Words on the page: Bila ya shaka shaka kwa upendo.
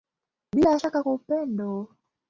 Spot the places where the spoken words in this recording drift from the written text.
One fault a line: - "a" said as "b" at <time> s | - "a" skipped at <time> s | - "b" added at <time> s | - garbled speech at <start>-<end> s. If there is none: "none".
- "shaka" skipped at 1.0 s